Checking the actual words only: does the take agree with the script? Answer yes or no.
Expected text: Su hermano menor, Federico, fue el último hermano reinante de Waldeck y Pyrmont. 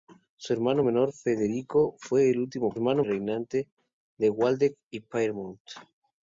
yes